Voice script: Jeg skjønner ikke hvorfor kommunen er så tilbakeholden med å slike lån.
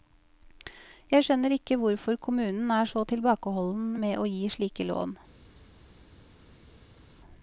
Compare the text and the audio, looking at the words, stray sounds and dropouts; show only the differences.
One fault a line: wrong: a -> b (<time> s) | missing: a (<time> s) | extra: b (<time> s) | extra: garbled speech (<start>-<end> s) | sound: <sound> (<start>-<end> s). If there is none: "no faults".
extra: gi (4.3 s)